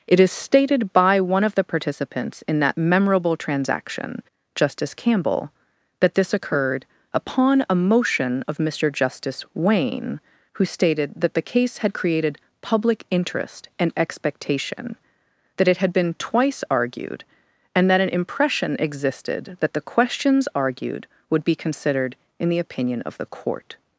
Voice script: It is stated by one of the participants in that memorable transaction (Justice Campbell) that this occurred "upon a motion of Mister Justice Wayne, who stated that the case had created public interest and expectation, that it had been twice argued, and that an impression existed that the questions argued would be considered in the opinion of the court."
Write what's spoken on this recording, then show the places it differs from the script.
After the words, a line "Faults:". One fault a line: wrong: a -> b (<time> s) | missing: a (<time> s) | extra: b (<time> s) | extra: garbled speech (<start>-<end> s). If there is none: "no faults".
It is stated by one of the participants in that memorable transaction (Justice Campbell) that this occurred "upon a motion of Mister Justice Wayne, who stated that the case had created public interest and expectation, that it had been twice argued, and that an impression existed that the questions argued would be considered in the opinion of the court."
Faults:
no faults